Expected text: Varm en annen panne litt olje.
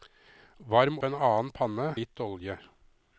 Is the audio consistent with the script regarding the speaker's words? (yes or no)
yes